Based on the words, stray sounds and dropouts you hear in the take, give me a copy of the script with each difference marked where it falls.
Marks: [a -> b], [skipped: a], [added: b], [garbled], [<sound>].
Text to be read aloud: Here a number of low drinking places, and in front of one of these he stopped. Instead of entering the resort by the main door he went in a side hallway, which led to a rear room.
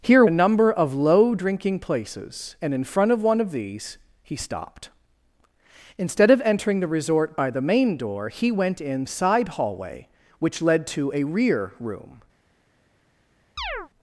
Here a number of low drinking places, and in front of one of these he stopped. Instead of entering the resort by the main door he went in a side hallway, which led to a rear room. [chirp]